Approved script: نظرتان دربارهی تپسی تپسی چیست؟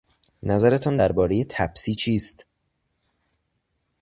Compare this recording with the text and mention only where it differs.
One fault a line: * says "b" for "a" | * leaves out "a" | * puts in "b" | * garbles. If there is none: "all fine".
* leaves out "تپسی"